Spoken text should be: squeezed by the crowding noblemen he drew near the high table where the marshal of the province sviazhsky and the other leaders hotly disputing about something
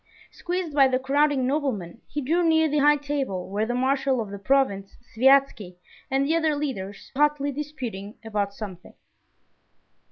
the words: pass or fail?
pass